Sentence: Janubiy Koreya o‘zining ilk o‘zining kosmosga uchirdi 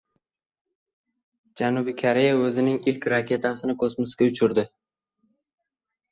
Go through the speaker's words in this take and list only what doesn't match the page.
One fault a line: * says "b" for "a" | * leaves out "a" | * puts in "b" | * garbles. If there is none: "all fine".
* says "raketasini" for "o‘zining"